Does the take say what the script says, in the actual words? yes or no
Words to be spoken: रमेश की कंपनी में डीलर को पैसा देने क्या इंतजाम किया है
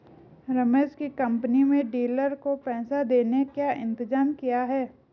yes